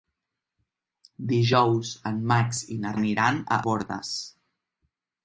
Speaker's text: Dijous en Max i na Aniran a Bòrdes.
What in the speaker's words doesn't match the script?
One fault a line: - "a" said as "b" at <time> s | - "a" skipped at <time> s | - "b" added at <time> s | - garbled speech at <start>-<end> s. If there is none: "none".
none